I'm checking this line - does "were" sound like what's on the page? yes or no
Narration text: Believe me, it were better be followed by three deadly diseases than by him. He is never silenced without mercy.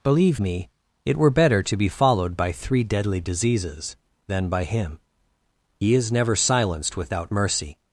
yes